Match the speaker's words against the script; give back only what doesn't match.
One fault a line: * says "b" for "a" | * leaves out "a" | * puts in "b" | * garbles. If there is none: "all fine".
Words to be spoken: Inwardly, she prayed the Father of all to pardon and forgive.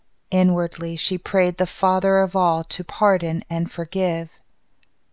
all fine